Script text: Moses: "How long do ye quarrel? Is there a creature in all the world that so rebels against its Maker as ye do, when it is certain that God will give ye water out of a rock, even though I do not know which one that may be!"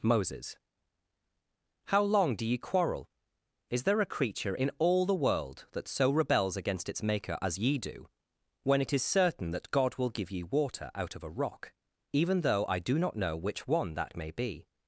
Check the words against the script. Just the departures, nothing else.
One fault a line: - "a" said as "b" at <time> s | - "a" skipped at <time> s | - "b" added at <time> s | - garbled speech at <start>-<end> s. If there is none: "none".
none